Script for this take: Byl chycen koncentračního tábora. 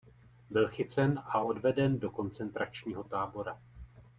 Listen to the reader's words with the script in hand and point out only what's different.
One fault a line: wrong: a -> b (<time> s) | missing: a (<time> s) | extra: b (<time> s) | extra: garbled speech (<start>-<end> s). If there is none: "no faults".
extra: a odveden do (1.2 s)